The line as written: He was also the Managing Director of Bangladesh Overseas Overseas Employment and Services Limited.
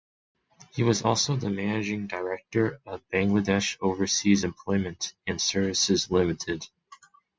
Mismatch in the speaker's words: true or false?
true